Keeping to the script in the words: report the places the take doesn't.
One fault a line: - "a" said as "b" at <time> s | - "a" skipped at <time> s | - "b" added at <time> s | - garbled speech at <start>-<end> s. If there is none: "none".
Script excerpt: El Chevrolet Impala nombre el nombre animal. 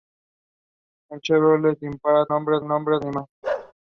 none